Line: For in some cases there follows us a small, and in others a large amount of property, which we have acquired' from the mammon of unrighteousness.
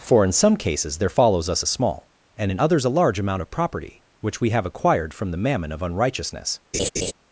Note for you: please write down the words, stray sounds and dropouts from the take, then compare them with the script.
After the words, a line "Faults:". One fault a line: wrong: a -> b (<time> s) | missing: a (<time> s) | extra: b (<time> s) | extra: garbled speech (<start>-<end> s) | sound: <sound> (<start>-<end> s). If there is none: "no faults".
For in some cases there follows us a small, and in others a large amount of property, which we have acquired' from the mammon of unrighteousness.
Faults:
sound: laugh (6.7-7.1 s)